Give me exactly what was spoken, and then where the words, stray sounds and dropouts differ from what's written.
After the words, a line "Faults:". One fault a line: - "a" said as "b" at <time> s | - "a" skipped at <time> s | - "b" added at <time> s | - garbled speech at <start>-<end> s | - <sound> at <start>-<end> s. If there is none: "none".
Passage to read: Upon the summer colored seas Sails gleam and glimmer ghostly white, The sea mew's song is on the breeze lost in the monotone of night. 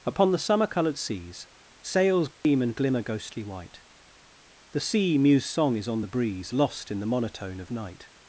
Upon the summer colored seas Sails gleam and glimmer ghostly white, The sea mew's song is on the breeze lost in the monotone of night.
Faults:
- dropout at 2.3-2.4 s